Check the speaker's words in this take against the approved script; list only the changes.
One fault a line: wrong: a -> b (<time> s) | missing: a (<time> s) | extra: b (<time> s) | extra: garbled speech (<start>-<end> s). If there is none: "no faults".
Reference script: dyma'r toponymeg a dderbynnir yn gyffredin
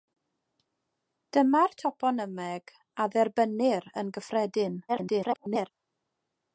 extra: garbled speech (4.9-5.7 s)